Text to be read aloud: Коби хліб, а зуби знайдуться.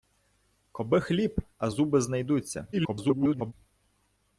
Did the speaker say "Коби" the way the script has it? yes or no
yes